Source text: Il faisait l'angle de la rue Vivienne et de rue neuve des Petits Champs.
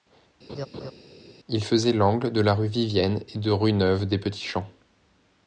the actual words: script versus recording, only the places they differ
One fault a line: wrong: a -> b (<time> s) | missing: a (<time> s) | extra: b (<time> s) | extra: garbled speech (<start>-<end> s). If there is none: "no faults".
no faults